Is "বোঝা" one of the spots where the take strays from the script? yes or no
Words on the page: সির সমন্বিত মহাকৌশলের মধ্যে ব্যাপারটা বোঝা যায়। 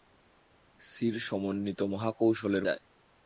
yes